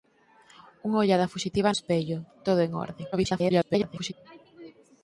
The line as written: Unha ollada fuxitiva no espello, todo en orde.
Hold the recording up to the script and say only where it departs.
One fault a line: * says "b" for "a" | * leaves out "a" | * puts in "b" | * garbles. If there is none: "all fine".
* leaves out "no"
* garbles